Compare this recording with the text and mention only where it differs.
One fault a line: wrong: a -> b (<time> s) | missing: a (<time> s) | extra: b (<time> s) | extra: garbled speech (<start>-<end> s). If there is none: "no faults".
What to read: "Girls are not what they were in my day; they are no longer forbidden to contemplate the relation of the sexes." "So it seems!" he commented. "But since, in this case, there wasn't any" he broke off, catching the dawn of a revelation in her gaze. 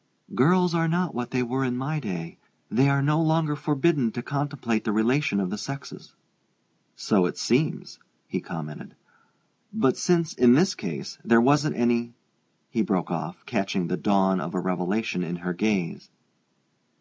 no faults